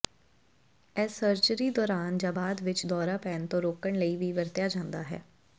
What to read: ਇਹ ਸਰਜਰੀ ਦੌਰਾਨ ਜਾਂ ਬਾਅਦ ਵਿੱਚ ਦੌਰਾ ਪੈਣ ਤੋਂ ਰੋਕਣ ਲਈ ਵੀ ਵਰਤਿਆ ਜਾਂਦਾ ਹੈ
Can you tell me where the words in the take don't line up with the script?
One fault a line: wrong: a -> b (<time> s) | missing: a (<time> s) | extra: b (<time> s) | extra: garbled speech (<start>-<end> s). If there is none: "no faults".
no faults